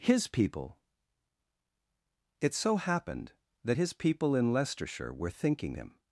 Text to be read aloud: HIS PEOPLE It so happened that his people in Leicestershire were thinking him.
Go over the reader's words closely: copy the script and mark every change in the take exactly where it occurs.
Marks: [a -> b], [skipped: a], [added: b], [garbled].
HIS PEOPLE It so happened that his people in Leicestershire were thinking him.